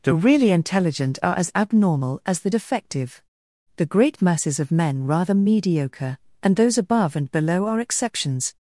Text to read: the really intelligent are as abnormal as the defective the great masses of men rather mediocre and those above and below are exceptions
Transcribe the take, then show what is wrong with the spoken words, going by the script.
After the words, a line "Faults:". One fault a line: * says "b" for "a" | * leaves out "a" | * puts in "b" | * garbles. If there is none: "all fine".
the really intelligent are as abnormal as the defective the great masses of men rather mediocre and those above and below are exceptions
Faults:
all fine